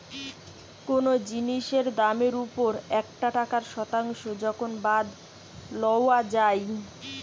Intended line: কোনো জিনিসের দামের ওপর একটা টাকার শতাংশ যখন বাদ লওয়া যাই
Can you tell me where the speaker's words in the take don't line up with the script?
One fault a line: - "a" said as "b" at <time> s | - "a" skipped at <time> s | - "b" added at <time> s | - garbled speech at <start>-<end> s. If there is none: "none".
none